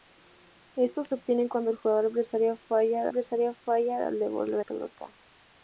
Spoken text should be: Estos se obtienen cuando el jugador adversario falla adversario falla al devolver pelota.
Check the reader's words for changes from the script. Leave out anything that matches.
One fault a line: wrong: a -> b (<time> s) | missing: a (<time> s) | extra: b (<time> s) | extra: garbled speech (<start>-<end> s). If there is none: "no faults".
no faults